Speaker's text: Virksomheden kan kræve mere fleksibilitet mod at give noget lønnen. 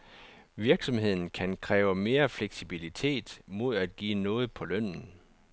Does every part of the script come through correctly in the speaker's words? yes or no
no